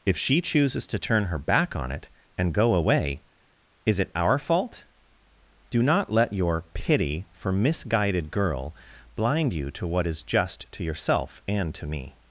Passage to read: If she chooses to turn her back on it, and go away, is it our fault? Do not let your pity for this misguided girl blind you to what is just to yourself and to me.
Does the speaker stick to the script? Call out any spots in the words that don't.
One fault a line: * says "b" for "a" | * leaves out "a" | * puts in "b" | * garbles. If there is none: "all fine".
* leaves out "this"